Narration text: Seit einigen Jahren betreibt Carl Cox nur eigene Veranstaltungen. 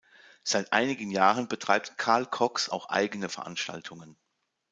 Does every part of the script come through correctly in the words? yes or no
no